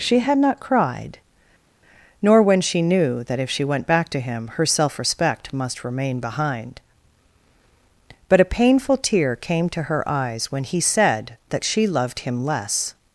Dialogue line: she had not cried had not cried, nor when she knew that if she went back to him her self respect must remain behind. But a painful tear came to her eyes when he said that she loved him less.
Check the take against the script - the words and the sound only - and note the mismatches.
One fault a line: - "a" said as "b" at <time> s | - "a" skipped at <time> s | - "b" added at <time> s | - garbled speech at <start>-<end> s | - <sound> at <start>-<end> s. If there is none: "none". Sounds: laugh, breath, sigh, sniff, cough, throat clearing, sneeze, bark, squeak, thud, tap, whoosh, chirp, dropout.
- "had not cried" skipped at 1.2 s